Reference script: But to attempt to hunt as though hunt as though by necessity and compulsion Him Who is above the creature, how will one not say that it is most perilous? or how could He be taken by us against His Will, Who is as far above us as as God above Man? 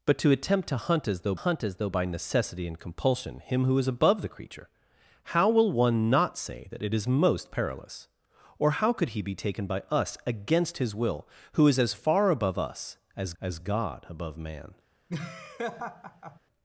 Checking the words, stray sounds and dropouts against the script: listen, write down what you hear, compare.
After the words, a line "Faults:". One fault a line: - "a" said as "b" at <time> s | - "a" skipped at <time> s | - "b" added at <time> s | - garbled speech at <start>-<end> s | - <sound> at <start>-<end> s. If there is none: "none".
But to attempt to hunt as though hunt as though by necessity and compulsion Him Who is above the creature, how will one not say that it is most perilous? or how could He be taken by us against His Will, Who is as far above us as as God above Man?
Faults:
- laugh at 15.1-16.4 s